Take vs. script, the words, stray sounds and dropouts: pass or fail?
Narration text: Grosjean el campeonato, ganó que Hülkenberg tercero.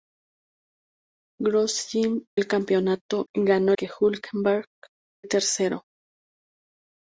pass